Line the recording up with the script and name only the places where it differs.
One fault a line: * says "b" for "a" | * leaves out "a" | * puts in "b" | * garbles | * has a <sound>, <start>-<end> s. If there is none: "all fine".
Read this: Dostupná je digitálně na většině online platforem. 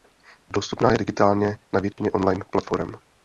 * has a dropout, 1.9-2.0 s